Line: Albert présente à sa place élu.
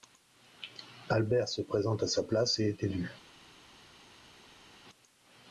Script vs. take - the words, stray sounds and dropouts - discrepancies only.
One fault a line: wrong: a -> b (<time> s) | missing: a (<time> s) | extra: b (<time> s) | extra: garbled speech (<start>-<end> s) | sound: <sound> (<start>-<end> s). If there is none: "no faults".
extra: se (1.5 s)
extra: et est (2.6 s)